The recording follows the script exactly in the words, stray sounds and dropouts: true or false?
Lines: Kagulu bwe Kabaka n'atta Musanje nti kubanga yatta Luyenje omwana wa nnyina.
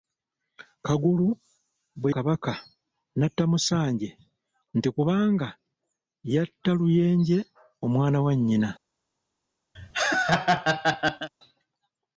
false